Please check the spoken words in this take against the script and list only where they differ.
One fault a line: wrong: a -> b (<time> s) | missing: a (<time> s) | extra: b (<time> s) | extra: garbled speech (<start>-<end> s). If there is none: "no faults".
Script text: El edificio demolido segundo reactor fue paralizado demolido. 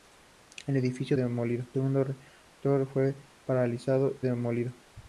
no faults